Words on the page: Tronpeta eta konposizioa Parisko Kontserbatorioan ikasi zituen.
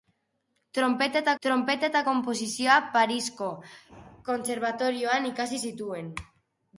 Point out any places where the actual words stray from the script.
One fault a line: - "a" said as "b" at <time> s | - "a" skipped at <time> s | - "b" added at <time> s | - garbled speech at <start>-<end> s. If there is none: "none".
- "tronpeta eta" added at 1.4 s